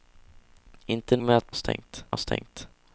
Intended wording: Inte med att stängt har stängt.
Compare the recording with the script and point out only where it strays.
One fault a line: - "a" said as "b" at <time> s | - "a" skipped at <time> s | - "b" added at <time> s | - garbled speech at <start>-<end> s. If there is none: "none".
none